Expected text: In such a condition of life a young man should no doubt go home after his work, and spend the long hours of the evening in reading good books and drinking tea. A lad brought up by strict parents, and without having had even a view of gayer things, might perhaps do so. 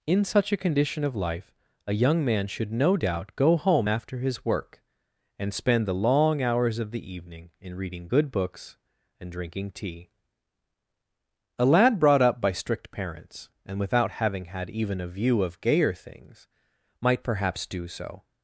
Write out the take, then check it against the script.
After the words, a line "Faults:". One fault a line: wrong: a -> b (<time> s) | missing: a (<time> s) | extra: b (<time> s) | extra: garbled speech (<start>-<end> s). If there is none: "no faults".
In such a condition of life a young man should no doubt go home after his work, and spend the long hours of the evening in reading good books and drinking tea. A lad brought up by strict parents, and without having had even a view of gayer things, might perhaps do so.
Faults:
no faults